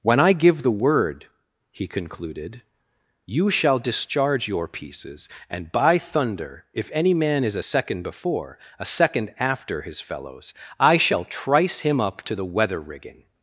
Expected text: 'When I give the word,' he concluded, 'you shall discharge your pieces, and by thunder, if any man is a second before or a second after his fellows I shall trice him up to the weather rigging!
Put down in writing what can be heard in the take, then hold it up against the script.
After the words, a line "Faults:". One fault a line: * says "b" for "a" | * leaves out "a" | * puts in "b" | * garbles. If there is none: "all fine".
'When I give the word,' he concluded, 'you shall discharge your pieces, and by thunder, if any man is a second before a second after his fellows I shall trice him up to the weather rigging!
Faults:
* leaves out "or"